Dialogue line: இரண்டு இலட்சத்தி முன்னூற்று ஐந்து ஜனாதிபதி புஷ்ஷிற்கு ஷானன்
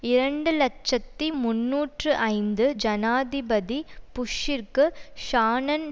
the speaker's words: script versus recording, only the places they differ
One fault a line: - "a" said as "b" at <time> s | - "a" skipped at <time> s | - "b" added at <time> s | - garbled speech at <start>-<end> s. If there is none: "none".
none